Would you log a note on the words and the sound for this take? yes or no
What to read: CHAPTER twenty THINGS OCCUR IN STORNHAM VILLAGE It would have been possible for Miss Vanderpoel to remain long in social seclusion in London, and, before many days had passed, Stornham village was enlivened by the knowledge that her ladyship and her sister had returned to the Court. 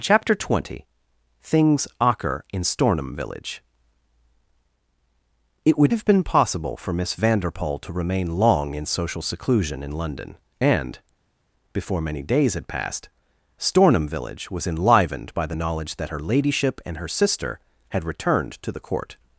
no